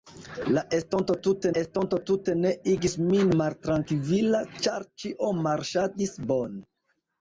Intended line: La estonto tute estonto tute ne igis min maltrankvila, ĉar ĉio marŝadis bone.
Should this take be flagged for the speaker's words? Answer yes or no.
no